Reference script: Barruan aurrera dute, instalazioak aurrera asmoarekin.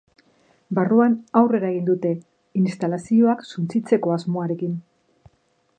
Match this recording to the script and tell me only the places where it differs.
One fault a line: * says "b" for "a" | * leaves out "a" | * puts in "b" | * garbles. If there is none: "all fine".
* puts in "egin"
* says "suntsitzeko" for "aurrera"